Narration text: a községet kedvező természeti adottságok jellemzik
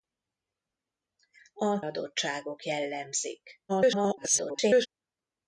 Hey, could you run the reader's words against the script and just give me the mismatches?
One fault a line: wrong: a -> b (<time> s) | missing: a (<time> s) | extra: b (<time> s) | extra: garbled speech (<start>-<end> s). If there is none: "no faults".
missing: községet kedvező természeti (1.8 s)
extra: garbled speech (3.7-4.9 s)